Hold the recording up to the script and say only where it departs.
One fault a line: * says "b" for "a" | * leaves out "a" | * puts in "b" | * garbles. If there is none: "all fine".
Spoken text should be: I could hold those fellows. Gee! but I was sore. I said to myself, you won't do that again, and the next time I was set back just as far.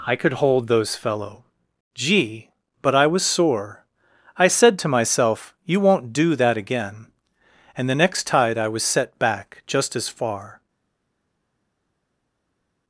* says "fellow" for "fellows"
* says "tide" for "time"